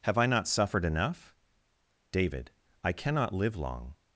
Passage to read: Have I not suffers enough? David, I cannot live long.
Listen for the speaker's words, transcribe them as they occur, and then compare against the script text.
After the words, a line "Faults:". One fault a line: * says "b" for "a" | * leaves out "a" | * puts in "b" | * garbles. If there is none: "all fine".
Have I not suffered enough? David, I cannot live long.
Faults:
* says "suffered" for "suffers"